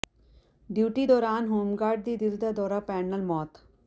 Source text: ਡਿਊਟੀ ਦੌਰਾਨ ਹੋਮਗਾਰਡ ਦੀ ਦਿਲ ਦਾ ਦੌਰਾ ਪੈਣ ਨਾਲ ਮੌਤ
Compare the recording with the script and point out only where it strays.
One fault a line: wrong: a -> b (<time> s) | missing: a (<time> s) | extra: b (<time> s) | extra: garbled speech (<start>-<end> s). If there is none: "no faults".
no faults